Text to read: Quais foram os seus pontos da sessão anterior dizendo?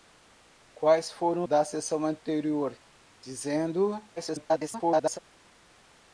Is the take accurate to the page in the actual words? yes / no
no